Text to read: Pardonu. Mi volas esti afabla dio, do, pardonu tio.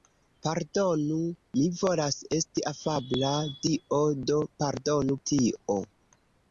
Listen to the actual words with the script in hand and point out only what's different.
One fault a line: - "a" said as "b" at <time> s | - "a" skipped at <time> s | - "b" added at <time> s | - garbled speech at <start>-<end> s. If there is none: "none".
none